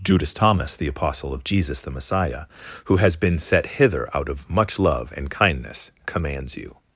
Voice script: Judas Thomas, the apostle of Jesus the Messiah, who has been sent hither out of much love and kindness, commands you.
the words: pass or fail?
fail